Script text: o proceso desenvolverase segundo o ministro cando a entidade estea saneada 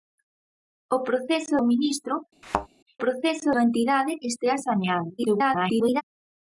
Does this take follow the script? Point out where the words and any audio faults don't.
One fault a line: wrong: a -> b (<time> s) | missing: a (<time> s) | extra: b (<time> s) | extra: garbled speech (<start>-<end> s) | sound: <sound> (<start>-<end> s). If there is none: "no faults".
missing: desenvolverase segundo (1.6 s)
sound: thud (2.4-2.7 s)
wrong: cando -> proceso (3.0 s)
extra: garbled speech (5.2-6.0 s)